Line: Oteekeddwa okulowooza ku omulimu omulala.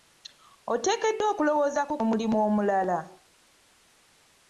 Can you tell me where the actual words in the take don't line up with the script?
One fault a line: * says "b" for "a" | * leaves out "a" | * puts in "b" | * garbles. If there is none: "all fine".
all fine